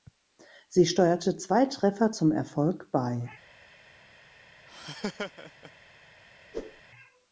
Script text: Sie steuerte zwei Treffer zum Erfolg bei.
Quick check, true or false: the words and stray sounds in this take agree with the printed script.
false